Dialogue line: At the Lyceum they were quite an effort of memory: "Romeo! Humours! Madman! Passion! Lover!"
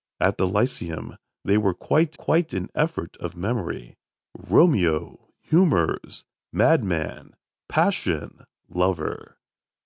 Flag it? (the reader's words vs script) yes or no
yes